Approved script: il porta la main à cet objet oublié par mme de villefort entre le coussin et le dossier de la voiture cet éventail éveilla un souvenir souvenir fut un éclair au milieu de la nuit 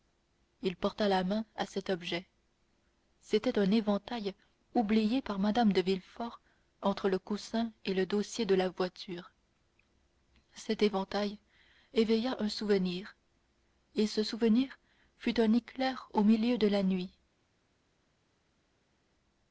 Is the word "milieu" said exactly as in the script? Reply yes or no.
yes